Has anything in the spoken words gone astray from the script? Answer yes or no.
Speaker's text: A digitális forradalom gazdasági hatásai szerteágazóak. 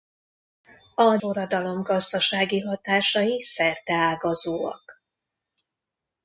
yes